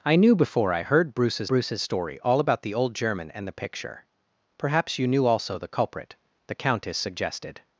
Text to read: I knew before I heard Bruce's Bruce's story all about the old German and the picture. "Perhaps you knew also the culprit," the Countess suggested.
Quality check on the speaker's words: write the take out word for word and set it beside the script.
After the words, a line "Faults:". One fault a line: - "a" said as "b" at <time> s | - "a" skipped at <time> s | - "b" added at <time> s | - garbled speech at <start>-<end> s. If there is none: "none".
I knew before I heard Bruce's Bruce's story all about the old German and the picture. "Perhaps you knew also the culprit," the Countess suggested.
Faults:
none